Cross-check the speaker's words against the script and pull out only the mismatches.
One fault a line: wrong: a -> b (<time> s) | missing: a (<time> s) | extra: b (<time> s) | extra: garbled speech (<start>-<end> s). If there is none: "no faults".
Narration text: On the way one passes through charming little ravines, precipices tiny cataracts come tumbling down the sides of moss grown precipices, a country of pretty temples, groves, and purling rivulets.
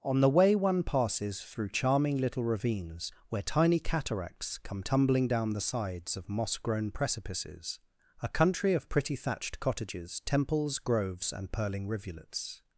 wrong: precipices -> where (3.3 s)
extra: thatched cottages (9.2 s)